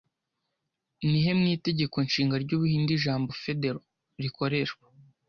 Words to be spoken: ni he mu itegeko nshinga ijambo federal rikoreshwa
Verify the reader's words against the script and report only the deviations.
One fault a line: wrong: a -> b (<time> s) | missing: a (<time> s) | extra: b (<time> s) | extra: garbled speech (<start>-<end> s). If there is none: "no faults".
extra: ry'ubuhinde (2.4 s)